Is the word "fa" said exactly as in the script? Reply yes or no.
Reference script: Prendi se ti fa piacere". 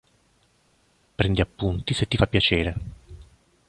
yes